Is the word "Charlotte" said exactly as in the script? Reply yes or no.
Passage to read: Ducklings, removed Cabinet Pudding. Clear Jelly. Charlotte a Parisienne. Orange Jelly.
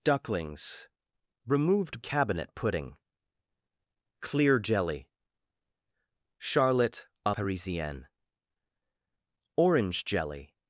yes